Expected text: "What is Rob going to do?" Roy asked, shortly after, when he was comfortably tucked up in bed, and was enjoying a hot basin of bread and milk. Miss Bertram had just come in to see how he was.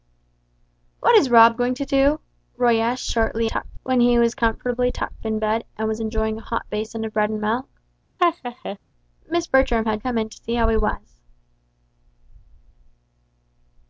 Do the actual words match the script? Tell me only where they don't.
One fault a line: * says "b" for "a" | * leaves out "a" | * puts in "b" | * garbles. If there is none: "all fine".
* says "tucked" for "after"
* leaves out "up"
* leaves out "just"